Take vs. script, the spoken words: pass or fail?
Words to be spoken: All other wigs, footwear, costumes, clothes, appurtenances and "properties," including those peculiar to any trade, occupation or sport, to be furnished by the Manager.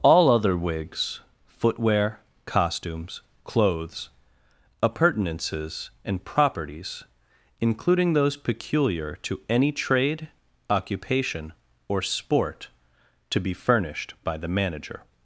pass